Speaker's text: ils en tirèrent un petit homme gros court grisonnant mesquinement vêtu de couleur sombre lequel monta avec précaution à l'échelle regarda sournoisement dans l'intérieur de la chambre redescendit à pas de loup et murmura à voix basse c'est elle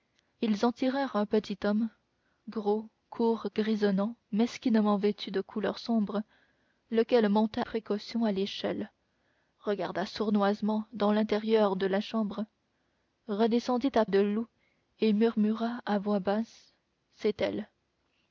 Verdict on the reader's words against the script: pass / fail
fail